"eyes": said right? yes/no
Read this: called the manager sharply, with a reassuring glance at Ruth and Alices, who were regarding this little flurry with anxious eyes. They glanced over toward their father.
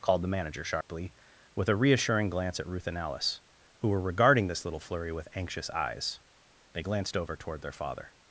yes